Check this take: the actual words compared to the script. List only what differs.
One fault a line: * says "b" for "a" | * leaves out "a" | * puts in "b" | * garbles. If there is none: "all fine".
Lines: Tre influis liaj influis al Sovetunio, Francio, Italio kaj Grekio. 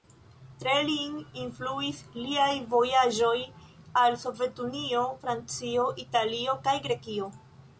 * puts in "lin"
* says "vojaĝoj" for "influis"